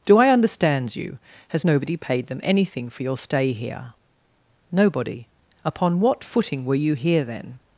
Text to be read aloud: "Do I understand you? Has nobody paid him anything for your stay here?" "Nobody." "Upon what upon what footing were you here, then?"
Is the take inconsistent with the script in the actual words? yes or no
yes